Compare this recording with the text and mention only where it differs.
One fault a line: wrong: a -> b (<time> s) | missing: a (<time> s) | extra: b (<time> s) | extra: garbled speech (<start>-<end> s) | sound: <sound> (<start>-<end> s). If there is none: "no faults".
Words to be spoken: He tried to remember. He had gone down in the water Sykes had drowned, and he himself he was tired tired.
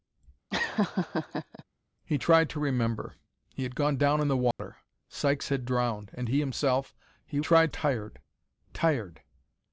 sound: laugh (0.5-1.6 s)
sound: dropout (4.5-4.6 s)
wrong: was -> tried (7.4 s)